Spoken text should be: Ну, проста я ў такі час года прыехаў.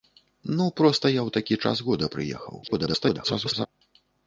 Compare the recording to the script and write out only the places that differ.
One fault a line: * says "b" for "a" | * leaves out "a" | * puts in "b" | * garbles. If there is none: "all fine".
* garbles